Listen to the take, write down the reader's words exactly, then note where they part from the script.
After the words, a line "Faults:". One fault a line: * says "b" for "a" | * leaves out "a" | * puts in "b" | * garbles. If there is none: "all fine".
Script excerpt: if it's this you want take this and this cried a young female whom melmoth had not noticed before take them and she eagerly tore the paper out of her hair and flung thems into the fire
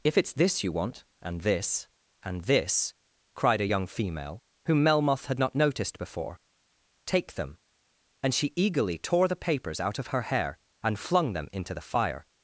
if it's this you want and this and this cried a young female whom melmoth had not noticed before take them and she eagerly tore the papers out of her hair and flung them into the fire
Faults:
* says "and" for "take"
* says "papers" for "paper"
* says "them" for "thems"